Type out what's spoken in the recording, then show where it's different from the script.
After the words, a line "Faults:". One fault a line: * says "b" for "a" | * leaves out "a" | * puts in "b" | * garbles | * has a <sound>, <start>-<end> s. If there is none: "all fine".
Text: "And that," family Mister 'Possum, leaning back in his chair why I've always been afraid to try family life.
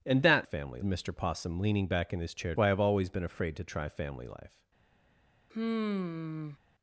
"And that," family Mister 'Possum, leaning back in his chair why I've always been afraid to try family life.
Faults:
* has a sigh, 5.5-6.6 s